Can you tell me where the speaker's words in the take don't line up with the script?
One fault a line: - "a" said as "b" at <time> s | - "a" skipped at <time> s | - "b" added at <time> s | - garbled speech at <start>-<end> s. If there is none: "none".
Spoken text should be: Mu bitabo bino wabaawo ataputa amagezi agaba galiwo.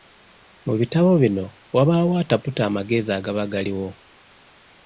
none